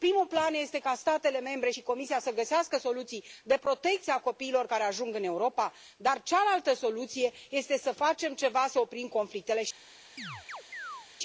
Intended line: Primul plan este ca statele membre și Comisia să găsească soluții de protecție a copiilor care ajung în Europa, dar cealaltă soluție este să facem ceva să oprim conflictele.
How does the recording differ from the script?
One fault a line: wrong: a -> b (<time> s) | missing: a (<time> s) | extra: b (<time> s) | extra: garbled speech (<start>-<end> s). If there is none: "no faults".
no faults